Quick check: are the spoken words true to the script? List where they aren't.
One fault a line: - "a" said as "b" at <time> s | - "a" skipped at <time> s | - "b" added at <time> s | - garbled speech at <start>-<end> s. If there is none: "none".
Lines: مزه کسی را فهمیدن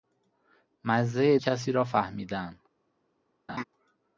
none